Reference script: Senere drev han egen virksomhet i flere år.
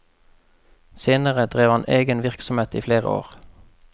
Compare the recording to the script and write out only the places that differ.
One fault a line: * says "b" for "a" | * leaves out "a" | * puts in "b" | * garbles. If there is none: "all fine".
all fine